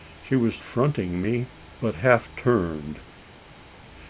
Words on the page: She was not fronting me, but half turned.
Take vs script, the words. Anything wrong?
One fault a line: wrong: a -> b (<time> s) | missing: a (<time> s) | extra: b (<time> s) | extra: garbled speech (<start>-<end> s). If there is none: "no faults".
missing: not (0.6 s)